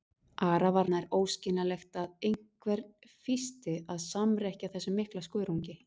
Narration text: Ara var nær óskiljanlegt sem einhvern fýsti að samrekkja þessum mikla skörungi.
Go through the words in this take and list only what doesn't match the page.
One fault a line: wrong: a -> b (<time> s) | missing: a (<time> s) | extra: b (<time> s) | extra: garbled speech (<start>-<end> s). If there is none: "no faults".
wrong: sem -> að (2.0 s)